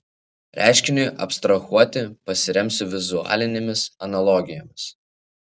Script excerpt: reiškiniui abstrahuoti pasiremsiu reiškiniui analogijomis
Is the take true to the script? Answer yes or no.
no